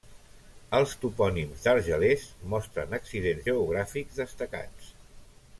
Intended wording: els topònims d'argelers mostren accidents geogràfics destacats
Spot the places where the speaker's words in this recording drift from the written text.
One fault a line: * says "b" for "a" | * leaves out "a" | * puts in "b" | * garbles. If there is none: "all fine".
all fine